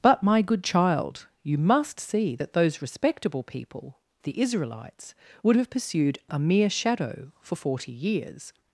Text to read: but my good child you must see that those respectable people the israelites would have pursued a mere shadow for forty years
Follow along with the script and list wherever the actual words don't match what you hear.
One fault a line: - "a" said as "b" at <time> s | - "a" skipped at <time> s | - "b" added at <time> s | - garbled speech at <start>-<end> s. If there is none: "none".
none